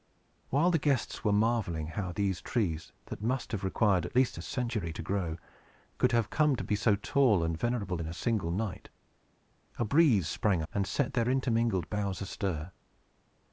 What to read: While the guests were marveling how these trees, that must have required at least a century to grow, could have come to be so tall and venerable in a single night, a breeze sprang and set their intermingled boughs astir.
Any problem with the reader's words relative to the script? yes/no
no